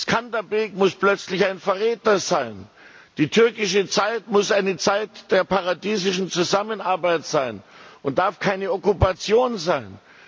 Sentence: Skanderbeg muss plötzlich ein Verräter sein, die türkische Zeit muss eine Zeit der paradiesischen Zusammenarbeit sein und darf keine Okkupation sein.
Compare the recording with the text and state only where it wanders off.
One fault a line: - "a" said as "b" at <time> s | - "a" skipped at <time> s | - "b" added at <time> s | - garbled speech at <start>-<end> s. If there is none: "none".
none